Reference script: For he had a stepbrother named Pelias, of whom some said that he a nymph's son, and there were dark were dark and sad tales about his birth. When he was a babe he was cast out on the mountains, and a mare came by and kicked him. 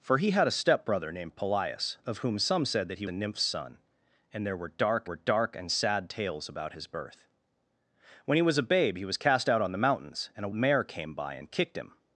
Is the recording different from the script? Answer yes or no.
no